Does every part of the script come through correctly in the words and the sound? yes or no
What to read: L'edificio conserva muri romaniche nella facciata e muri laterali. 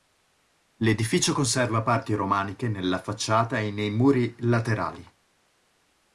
no